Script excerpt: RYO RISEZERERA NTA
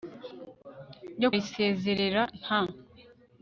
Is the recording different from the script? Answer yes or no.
no